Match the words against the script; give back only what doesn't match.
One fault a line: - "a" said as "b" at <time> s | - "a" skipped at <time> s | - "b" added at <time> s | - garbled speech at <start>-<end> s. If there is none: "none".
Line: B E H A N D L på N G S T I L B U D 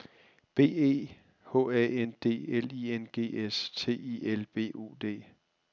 - "på" said as "I" at 2.7 s